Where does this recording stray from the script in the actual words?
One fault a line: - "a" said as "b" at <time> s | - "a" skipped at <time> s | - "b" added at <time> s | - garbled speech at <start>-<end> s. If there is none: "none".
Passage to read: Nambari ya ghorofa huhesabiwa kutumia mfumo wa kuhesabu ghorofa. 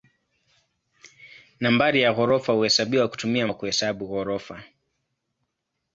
- "mfumo" skipped at 3.5 s